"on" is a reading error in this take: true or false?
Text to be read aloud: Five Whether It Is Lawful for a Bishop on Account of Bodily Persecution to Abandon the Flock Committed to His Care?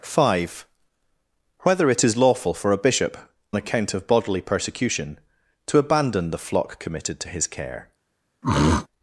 true